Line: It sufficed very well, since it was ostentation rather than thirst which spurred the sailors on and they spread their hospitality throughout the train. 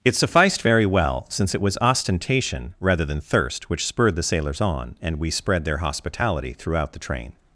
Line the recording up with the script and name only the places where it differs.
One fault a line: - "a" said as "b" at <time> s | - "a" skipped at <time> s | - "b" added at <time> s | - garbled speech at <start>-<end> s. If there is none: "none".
- "they" said as "we" at 5.2 s